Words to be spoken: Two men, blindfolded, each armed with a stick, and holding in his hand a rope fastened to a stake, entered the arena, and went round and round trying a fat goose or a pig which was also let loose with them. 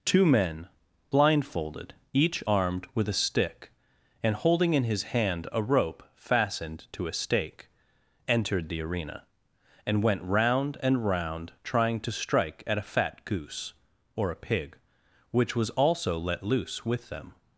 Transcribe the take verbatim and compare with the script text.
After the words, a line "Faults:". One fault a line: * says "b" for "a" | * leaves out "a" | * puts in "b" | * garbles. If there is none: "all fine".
Two men, blindfolded, each armed with a stick, and holding in his hand a rope fastened to a stake, entered the arena, and went round and round trying to strike at a fat goose or a pig which was also let loose with them.
Faults:
* puts in "to strike at"